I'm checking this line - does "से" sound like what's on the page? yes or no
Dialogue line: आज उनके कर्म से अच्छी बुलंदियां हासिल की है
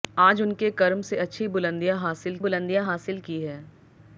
yes